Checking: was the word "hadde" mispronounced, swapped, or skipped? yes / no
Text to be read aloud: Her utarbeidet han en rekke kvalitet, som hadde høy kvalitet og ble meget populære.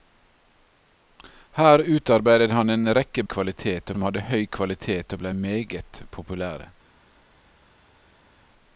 no